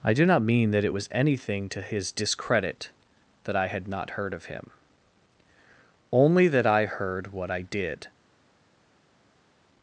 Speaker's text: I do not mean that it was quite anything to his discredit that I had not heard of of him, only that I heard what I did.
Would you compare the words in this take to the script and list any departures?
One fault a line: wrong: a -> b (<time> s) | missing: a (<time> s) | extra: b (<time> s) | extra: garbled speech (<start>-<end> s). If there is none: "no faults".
missing: quite (1.1 s)
missing: of (4.5 s)